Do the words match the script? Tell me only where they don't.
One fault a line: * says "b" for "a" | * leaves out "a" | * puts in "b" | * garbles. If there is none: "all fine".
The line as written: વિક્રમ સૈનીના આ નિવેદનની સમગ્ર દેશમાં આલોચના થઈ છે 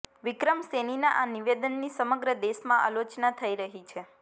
* puts in "રહી"